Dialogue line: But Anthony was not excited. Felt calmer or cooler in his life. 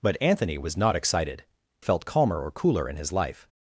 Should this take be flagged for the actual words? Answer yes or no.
no